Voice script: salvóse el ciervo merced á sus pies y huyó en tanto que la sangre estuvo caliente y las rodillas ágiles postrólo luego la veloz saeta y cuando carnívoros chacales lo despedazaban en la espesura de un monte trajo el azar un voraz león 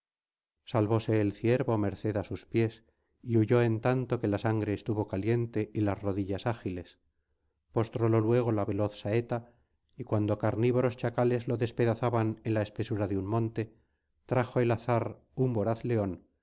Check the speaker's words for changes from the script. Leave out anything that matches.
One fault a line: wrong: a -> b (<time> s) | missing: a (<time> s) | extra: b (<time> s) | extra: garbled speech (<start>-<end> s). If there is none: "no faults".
no faults